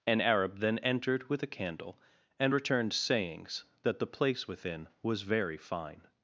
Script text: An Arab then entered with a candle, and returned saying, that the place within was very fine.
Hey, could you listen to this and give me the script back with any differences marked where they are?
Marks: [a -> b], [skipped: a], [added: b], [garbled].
An Arab then entered with a candle, and returned [saying, -> sayings] that the place within was very fine.